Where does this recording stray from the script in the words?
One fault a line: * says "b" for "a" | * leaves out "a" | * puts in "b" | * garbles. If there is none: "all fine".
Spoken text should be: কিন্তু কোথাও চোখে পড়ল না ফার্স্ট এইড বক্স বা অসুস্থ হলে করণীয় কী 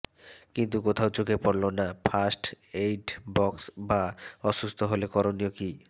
all fine